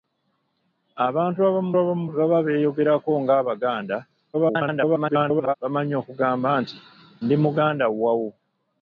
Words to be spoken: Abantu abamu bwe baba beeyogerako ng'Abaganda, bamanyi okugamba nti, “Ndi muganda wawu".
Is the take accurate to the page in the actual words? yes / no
no